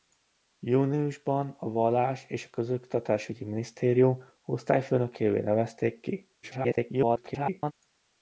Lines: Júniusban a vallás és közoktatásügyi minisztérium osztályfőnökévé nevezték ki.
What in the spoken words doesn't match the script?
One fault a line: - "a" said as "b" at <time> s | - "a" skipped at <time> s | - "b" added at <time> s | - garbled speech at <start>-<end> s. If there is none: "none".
- garbled speech at 6.4-7.7 s